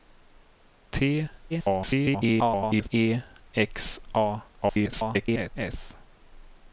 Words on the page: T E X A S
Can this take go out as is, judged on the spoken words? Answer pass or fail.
fail